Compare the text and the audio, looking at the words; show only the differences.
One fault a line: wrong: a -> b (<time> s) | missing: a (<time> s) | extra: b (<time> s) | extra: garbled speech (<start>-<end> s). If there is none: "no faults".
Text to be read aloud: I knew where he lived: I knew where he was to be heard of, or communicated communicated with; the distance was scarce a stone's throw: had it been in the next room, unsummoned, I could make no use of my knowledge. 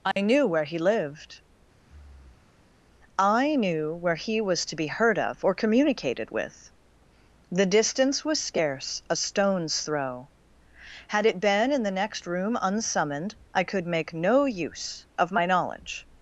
missing: communicated (6.3 s)